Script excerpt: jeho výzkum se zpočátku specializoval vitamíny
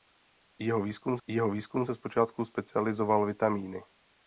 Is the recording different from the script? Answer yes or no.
yes